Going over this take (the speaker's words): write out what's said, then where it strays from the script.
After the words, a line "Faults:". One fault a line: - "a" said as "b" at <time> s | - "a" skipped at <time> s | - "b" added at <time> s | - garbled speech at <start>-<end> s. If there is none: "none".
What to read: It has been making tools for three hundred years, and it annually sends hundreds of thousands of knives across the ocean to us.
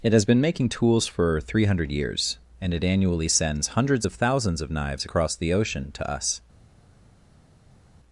It has been making tools for three hundred years, and it annually sends hundreds of thousands of knives across the ocean to us.
Faults:
none